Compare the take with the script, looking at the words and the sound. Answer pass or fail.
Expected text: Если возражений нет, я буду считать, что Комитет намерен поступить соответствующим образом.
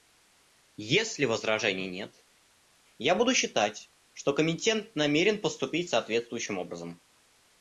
pass